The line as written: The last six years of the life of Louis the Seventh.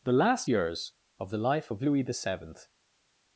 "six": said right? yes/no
no